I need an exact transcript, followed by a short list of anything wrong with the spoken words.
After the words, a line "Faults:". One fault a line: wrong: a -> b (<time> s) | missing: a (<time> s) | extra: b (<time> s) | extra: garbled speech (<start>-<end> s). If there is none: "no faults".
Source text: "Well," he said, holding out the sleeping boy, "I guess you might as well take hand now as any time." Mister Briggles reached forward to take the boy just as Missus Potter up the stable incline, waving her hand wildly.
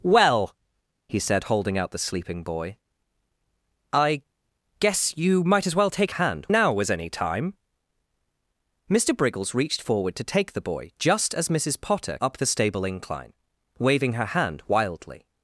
"Well," he said, holding out the sleeping boy, "I guess you might as well take hand now as any time." Mister Briggles reached forward to take the boy just as Missus Potter up the stable incline, waving her hand wildly.
Faults:
no faults